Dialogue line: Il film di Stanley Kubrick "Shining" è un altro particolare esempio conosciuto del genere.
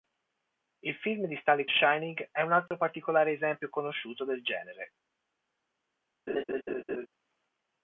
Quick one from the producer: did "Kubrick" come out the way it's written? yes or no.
no